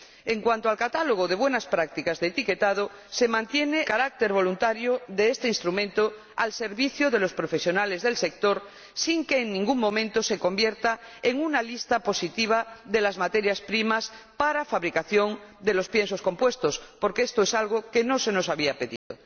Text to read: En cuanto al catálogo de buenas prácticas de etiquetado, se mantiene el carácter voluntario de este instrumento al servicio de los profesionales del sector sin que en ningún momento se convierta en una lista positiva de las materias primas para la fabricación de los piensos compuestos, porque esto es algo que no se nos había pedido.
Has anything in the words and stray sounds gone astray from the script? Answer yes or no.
yes